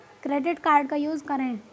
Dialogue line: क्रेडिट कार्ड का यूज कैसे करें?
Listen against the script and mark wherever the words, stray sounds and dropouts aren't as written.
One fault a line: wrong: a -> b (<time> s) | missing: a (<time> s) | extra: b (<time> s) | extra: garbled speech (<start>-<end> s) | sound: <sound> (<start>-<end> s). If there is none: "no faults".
missing: कैसे (1.2 s)